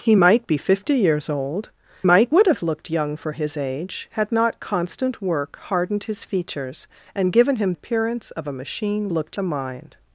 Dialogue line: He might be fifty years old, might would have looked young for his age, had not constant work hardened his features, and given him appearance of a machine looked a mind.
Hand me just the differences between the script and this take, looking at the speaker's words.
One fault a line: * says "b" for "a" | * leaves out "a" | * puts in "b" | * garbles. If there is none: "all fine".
all fine